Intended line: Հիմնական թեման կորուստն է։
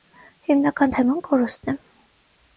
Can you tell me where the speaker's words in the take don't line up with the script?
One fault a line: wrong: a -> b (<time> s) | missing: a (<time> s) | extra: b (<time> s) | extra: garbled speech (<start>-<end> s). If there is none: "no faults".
no faults